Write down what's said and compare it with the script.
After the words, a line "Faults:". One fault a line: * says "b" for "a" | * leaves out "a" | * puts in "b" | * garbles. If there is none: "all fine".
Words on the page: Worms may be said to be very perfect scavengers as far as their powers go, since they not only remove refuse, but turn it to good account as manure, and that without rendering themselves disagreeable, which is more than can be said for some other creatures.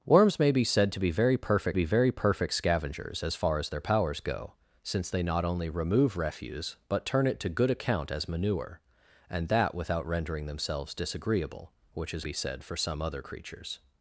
Worms may be said to be very perfect be very perfect scavengers as far as their powers go, since they not only remove refuse, but turn it to good account as manure, and that without rendering themselves disagreeable, which is be said for some other creatures.
Faults:
* puts in "be very perfect"
* leaves out "more than can"